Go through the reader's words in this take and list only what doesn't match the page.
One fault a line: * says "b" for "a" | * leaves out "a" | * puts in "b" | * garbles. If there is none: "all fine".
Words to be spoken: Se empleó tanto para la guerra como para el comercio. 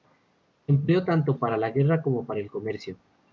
all fine